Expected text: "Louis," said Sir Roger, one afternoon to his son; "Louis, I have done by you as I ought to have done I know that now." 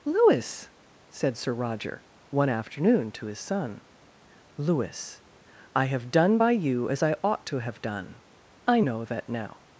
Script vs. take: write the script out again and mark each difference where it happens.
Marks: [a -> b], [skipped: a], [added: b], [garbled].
"Louis," said Sir Roger, one afternoon to his son; "Louis, I have done by you as I ought to have done I know that now."